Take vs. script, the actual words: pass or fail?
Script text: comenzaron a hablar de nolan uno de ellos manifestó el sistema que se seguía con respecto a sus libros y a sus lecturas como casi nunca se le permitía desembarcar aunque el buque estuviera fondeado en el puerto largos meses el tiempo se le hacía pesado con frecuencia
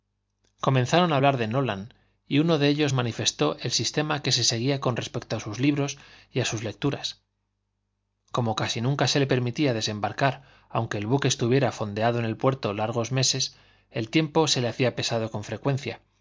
fail